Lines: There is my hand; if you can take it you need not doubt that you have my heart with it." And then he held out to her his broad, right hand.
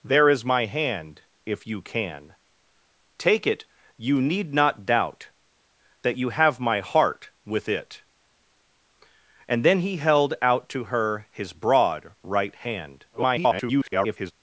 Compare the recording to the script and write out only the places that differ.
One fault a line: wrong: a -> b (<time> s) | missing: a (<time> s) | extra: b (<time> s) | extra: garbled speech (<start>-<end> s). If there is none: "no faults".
extra: garbled speech (13.1-14.3 s)